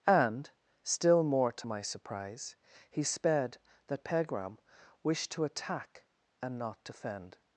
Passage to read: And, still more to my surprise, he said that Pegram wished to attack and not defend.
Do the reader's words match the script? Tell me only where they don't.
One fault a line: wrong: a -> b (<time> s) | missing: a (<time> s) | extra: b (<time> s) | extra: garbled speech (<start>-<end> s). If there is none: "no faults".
wrong: said -> sped (3.0 s)